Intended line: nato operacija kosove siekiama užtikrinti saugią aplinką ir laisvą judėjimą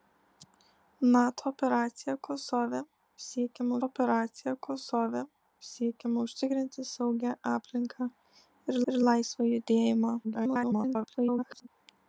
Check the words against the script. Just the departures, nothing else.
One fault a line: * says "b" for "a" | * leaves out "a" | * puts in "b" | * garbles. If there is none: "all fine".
* puts in "operacija kosove siekiama"
* puts in "ir"
* garbles